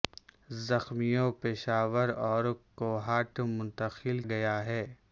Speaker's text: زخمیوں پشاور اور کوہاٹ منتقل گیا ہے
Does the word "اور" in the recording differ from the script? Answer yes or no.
no